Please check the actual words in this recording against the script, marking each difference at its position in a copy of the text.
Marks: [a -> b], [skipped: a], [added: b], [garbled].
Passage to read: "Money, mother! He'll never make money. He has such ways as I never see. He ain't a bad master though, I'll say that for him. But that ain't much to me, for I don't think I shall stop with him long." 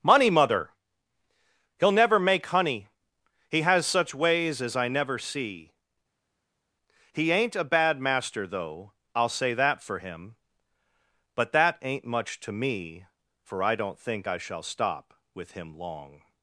"Money, mother! He'll never make [money. -> honey] He has such ways as I never see. He ain't a bad master though, I'll say that for him. But that ain't much to me, for I don't think I shall stop with him long."